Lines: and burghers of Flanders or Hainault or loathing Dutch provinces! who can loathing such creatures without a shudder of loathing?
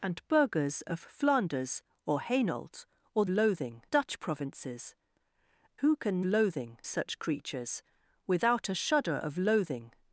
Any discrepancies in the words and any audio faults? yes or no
no